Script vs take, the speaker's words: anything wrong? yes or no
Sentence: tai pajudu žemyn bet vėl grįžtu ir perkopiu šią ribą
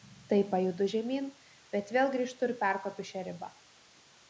no